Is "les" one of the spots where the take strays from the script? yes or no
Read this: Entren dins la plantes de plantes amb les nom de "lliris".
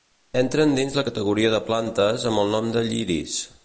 yes